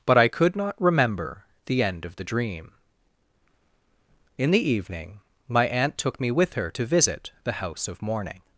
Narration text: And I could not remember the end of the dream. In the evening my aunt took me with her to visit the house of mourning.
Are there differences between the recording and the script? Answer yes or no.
yes